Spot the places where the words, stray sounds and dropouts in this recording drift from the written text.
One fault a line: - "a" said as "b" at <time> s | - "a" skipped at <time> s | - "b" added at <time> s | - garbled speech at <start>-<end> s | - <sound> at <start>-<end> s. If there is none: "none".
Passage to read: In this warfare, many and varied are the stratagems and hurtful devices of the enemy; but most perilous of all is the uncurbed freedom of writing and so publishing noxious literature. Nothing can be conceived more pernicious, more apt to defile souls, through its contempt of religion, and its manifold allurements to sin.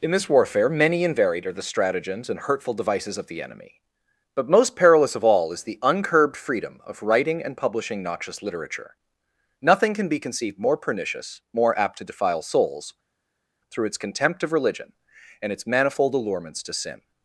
- "so" skipped at 7.5 s